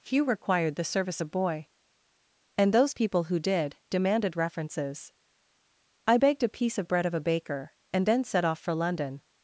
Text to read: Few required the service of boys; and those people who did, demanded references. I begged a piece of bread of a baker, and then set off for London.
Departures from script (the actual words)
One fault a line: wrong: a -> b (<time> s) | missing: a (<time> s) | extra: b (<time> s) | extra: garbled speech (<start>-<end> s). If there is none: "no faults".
wrong: boys -> boy (1.3 s)